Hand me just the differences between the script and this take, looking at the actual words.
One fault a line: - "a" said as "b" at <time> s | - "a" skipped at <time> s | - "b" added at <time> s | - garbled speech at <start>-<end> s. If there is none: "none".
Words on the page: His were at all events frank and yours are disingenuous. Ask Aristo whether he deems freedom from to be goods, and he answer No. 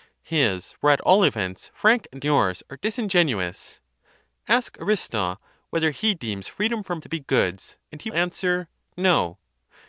none